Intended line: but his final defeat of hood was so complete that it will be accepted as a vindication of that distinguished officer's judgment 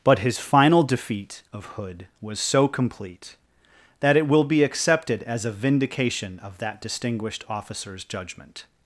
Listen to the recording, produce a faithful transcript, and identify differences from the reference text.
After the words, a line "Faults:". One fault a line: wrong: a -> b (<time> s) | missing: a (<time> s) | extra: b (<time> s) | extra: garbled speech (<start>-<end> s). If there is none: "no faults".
but his final defeat of hood was so complete that it will be accepted as a vindication of that distinguished officer's judgment
Faults:
no faults